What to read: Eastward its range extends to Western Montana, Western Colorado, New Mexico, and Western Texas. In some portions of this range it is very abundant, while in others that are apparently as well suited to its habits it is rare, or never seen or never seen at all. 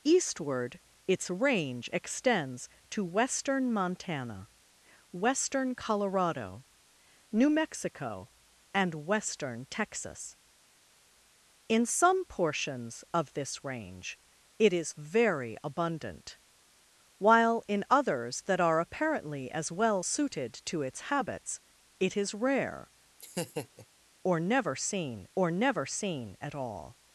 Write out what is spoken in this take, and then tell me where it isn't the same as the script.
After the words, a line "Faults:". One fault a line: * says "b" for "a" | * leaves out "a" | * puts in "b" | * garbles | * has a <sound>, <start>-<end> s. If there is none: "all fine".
Eastward its range extends to Western Montana, Western Colorado, New Mexico, and Western Texas. In some portions of this range it is very abundant, while in others that are apparently as well suited to its habits it is rare, or never seen or never seen at all.
Faults:
* has a laugh, 23.2-23.9 s